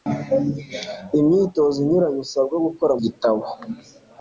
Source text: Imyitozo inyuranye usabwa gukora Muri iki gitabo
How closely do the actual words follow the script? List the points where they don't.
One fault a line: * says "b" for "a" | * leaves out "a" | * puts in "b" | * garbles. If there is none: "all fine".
* leaves out "Muri iki"